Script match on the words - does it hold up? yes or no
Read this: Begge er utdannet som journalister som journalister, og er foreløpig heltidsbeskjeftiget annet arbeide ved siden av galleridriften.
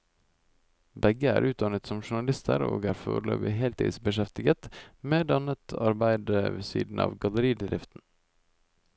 no